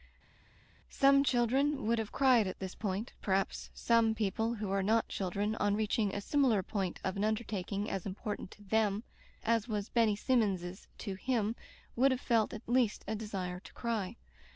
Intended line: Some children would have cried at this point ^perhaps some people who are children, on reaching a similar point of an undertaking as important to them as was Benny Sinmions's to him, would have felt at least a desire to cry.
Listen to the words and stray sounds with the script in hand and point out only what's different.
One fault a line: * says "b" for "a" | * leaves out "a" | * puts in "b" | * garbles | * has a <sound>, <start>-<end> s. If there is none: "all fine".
* puts in "not"